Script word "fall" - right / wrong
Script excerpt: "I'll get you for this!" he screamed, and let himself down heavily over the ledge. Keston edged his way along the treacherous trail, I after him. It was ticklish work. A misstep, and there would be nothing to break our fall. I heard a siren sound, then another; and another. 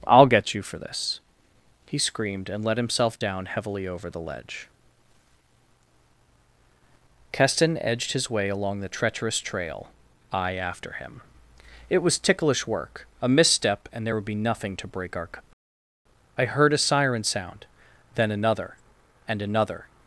wrong